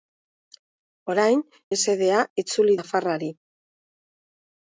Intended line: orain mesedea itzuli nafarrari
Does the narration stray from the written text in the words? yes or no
no